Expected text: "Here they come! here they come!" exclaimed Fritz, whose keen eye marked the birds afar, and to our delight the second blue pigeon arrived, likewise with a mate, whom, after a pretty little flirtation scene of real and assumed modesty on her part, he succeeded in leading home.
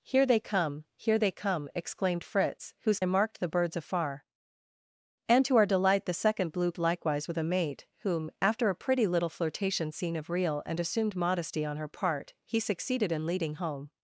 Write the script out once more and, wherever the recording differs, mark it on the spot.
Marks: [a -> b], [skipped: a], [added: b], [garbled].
"Here they come! here they come!" exclaimed Fritz, whose [skipped: keen] eye marked the birds afar, and to our delight the second blue [skipped: pigeon arrived,] likewise with a mate, whom, after a pretty little flirtation scene of real and assumed modesty on her part, he succeeded in leading home.